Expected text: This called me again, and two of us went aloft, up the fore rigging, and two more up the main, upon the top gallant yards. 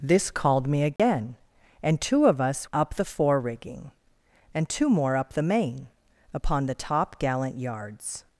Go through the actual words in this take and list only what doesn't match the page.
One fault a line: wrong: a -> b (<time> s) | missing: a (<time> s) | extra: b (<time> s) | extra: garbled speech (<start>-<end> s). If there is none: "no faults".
missing: went aloft (2.7 s)